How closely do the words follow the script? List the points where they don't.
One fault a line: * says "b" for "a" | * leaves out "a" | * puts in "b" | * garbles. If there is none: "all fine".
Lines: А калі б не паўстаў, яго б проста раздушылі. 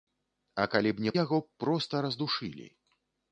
* leaves out "паўстаў"